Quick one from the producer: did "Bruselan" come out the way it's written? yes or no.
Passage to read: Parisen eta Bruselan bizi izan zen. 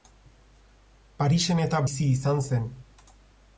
no